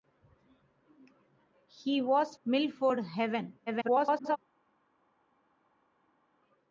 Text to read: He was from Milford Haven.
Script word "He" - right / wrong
right